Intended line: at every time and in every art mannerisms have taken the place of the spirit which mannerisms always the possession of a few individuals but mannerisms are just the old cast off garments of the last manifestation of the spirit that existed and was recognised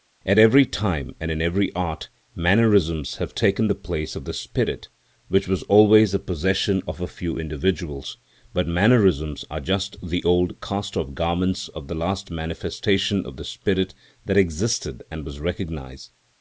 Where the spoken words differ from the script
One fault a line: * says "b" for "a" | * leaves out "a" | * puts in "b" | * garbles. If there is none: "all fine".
* says "was" for "mannerisms"